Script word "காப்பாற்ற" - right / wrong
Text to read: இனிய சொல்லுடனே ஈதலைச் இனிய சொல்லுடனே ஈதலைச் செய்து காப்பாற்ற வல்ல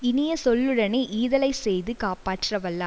right